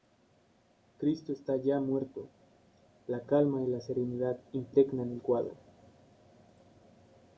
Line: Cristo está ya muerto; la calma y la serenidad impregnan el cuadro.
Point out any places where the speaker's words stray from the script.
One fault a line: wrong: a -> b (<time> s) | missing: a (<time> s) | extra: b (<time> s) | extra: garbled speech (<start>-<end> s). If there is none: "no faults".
no faults